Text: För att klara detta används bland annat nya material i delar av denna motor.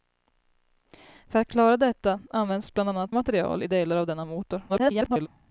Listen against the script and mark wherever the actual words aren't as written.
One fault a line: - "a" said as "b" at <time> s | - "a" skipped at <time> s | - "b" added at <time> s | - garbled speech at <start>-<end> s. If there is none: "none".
- "nya" skipped at 3.1 s
- garbled speech at 4.7-5.3 s